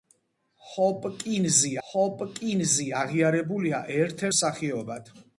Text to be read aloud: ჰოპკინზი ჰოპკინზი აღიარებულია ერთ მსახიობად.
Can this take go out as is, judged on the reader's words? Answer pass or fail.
pass